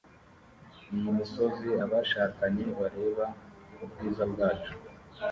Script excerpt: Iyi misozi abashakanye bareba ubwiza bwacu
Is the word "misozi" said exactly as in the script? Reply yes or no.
yes